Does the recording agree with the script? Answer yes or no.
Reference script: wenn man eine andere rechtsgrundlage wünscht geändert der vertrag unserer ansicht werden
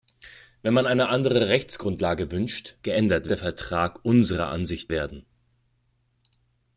yes